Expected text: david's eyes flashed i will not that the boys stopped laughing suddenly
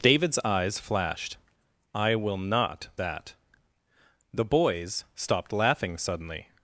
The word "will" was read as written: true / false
true